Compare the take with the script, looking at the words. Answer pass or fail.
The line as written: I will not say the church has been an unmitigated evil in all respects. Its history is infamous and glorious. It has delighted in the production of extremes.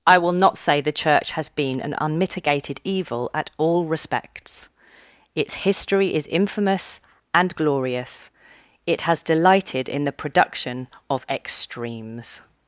fail